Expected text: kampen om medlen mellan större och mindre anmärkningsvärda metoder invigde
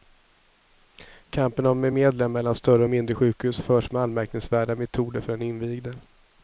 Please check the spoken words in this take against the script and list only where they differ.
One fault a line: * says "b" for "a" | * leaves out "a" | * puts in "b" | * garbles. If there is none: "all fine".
* puts in "sjukhus förs med"
* puts in "för den"